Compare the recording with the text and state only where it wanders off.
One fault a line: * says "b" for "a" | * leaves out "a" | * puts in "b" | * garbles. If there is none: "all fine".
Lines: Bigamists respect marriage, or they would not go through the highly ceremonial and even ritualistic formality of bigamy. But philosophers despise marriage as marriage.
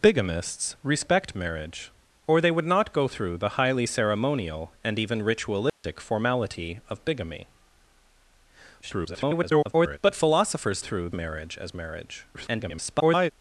* garbles
* says "through" for "despise"
* garbles